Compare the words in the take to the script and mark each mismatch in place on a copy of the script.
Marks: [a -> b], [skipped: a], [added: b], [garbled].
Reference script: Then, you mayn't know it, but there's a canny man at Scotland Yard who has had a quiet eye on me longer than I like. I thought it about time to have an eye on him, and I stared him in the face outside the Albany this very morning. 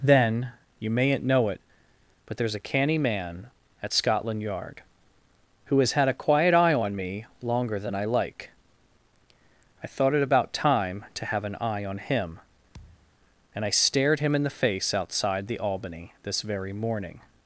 Then, you mayn't know it, but there's a canny man at Scotland Yard who has had a quiet eye on me longer than I like. I thought it about time to have an eye on him, and I stared him in the face outside the Albany this very morning.